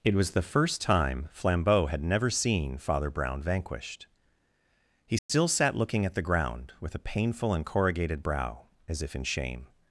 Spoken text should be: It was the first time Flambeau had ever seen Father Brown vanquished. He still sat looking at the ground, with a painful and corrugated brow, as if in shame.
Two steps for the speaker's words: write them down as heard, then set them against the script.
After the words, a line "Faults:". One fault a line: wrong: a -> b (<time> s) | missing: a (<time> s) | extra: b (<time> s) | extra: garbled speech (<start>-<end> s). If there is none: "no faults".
It was the first time Flambeau had never seen Father Brown vanquished. He still sat looking at the ground, with a painful and corrugated brow, as if in shame.
Faults:
wrong: ever -> never (2.0 s)